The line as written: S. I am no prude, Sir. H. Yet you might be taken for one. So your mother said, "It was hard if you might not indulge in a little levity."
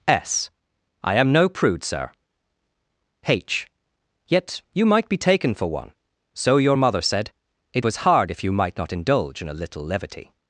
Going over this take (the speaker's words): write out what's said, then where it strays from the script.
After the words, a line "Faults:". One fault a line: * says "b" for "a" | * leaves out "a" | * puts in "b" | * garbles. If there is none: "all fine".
S. I am no prude, Sir. H. Yet you might be taken for one. So your mother said, "It was hard if you might not indulge in a little levity."
Faults:
all fine